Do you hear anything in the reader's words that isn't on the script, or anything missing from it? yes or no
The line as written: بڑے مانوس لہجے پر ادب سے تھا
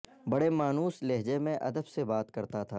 yes